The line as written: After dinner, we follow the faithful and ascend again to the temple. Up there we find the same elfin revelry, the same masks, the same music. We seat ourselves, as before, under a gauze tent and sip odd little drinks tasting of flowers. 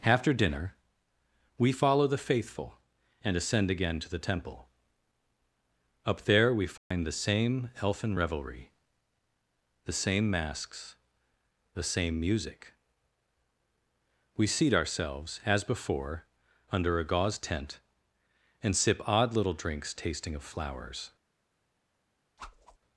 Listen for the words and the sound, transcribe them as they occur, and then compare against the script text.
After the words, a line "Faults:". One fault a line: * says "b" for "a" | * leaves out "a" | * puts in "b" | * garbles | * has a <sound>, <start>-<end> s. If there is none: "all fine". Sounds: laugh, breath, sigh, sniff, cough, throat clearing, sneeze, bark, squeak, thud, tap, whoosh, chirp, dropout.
After dinner, we follow the faithful and ascend again to the temple. Up there we find the same elfin revelry, the same masks, the same music. We seat ourselves, as before, under a gauze tent and sip odd little drinks tasting of flowers.
Faults:
* has a dropout, 6.8-6.9 s
* has a whoosh, 22.4-22.8 s